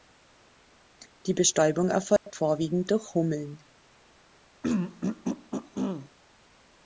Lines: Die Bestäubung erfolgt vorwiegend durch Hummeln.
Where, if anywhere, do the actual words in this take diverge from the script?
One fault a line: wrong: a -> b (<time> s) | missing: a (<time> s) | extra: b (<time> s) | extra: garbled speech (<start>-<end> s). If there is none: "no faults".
no faults